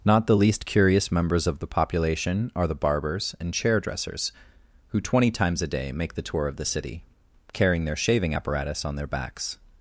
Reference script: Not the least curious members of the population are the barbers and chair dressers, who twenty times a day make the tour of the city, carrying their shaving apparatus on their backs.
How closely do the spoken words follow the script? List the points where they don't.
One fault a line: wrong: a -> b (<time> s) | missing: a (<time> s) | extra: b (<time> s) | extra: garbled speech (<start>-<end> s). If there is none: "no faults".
no faults